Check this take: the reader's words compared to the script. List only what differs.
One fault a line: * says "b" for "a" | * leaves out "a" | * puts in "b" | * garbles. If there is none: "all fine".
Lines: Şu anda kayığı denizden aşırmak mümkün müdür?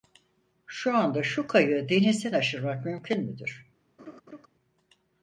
* puts in "şu"